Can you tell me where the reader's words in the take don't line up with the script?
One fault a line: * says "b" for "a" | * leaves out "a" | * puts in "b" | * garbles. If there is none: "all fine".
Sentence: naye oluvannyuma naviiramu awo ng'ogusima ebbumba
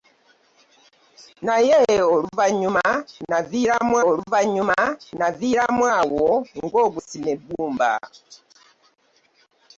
* puts in "oluvannyuma naviiramu"